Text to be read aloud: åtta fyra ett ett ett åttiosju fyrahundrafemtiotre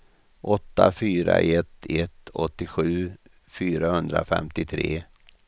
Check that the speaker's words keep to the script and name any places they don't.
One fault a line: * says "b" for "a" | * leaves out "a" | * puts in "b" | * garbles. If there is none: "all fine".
* leaves out "ett"